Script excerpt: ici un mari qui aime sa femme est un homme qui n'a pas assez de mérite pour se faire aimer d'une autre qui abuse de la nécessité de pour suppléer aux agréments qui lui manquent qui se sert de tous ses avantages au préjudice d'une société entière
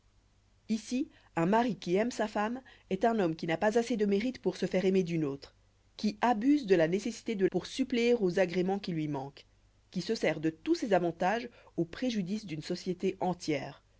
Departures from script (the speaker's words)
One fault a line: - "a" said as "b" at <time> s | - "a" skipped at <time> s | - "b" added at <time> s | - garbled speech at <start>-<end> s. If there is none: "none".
none